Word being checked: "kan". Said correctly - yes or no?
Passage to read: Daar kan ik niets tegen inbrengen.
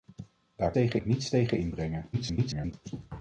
no